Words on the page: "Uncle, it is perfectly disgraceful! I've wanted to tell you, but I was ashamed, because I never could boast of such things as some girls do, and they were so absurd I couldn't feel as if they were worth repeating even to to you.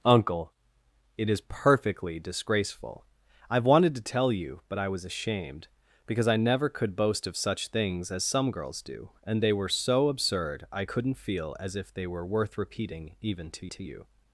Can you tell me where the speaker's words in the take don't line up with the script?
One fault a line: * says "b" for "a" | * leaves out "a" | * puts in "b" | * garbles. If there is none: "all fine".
all fine